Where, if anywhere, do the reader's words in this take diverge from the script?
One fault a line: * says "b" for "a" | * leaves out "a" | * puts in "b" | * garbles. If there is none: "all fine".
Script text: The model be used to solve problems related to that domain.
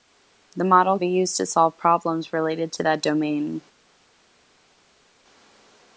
all fine